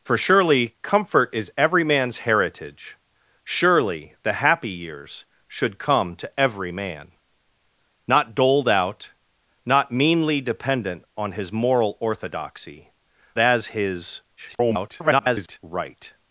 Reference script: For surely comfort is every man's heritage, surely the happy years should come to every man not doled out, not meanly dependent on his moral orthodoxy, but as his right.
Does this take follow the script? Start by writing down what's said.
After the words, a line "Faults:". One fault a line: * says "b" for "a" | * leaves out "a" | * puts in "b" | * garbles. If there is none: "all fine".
For surely comfort is every man's heritage, surely the happy years should come to every man not doled out, not meanly dependent on his moral orthodoxy, as his [garbled] right.
Faults:
* leaves out "but"
* garbles